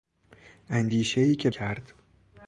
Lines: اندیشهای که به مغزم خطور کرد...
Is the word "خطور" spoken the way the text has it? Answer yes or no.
no